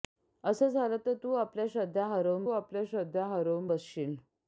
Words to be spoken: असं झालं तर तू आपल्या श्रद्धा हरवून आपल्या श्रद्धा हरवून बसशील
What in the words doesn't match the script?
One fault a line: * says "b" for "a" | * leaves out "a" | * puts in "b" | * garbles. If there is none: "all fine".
all fine